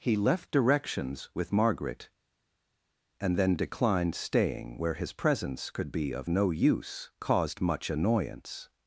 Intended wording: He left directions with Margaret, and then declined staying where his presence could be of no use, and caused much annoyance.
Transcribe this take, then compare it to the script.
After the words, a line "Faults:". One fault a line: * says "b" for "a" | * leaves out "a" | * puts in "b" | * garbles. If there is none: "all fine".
He left directions with Margaret, and then declined staying where his presence could be of no use, caused much annoyance.
Faults:
* leaves out "and"